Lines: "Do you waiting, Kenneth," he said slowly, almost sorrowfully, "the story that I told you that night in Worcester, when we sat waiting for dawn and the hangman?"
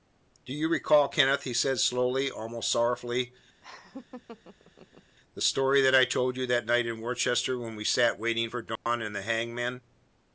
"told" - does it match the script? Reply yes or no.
yes